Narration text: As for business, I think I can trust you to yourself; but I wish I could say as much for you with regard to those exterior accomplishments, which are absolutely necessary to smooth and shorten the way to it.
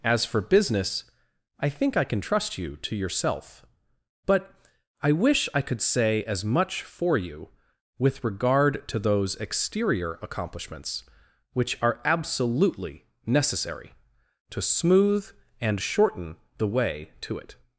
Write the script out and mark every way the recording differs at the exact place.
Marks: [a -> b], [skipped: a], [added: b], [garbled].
As for business, I think I can trust you to yourself; but I wish I could say as much for you with regard to those exterior accomplishments, which are absolutely necessary to smooth and shorten the way to it.